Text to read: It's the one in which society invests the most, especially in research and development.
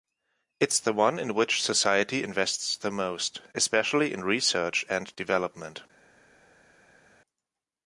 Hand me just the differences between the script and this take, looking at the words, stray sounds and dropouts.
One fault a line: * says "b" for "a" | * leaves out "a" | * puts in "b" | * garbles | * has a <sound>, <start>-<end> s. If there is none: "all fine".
all fine